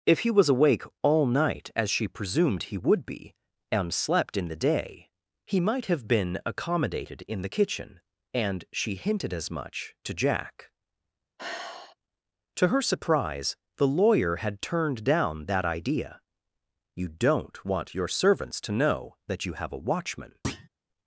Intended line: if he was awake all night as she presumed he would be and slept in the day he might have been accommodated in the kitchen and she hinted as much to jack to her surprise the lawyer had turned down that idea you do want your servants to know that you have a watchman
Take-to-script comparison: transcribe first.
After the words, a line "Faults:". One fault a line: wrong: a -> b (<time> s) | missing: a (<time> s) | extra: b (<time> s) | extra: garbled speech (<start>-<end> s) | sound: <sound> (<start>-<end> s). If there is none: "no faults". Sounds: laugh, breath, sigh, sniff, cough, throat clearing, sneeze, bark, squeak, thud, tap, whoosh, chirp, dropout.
if he was awake all night as she presumed he would be and slept in the day he might have been accommodated in the kitchen and she hinted as much to jack to her surprise the lawyer had turned down that idea you don't want your servants to know that you have a watchman
Faults:
sound: sigh (11.4-12.0 s)
wrong: do -> don't (17.1 s)
sound: thud (20.4-20.7 s)